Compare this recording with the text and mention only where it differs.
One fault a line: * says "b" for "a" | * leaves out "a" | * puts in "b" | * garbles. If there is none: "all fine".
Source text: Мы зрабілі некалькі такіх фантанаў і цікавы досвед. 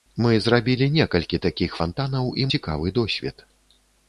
all fine